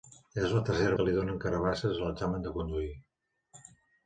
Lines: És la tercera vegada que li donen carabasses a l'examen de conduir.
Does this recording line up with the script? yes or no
no